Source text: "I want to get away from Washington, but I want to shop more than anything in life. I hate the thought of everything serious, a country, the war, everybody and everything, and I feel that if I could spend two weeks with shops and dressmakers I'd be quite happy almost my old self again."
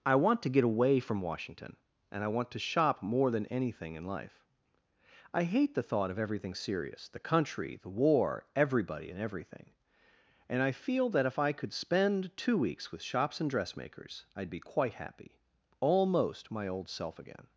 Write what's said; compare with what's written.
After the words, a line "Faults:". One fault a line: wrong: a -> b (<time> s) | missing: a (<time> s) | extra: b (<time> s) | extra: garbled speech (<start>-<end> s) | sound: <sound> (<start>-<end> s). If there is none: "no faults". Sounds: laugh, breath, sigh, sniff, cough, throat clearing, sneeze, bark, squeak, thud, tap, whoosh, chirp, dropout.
"I want to get away from Washington, and I want to shop more than anything in life. I hate the thought of everything serious, the country, the war, everybody and everything, and I feel that if I could spend two weeks with shops and dressmakers I'd be quite happy almost my old self again."
Faults:
wrong: but -> and (2.1 s)
wrong: a -> the (7.1 s)